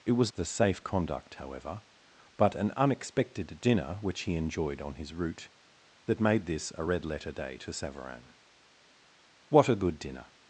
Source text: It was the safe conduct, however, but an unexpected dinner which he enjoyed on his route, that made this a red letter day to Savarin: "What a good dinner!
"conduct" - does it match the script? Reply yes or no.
yes